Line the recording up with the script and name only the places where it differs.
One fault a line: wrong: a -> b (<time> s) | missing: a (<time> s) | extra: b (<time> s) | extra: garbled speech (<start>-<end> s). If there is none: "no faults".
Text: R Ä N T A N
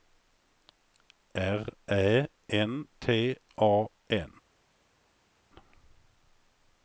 no faults